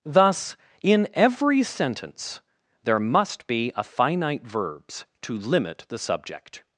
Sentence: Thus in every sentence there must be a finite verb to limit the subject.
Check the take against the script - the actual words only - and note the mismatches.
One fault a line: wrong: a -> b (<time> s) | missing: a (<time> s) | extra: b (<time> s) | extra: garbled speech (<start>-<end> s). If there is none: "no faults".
wrong: verb -> verbs (4.4 s)